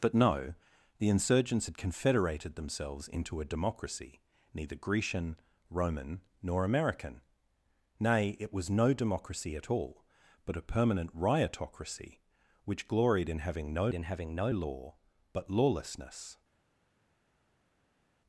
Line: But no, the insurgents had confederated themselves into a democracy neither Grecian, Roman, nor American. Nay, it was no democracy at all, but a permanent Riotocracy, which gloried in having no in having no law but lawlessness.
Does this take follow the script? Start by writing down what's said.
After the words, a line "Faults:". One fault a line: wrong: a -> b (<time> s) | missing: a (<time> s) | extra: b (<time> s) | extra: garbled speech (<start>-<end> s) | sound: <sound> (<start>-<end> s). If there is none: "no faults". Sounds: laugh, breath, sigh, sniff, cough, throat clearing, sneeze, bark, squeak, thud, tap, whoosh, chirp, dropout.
But no, the insurgents had confederated themselves into a democracy neither Grecian, Roman, nor American. Nay, it was no democracy at all, but a permanent Riotocracy, which gloried in having no in having no law but lawlessness.
Faults:
no faults